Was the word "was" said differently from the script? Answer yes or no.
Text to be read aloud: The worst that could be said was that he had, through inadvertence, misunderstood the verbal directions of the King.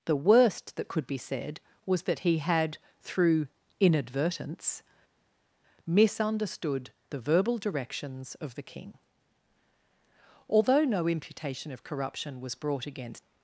no